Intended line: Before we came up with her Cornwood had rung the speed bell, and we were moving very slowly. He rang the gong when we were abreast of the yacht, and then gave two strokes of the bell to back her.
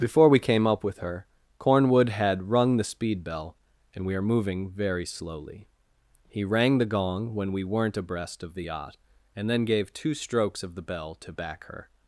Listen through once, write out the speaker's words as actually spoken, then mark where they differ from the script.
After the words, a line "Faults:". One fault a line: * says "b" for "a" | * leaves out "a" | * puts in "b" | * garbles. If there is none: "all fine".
Before we came up with her Cornwood had rung the speed bell, and we are moving very slowly. He rang the gong when we weren't abreast of the yacht, and then gave two strokes of the bell to back her.
Faults:
* says "are" for "were"
* says "weren't" for "were"